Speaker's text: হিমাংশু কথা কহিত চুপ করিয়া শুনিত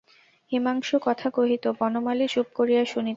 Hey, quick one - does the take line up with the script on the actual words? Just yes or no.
no